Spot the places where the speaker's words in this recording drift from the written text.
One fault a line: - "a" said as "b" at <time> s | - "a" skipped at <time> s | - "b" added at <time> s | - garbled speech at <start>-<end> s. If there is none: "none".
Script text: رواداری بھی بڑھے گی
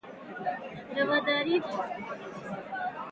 - "بھی بڑھے" skipped at 1.6 s